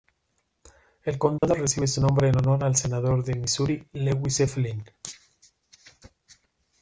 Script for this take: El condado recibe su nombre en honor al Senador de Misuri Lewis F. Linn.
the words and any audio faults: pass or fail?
fail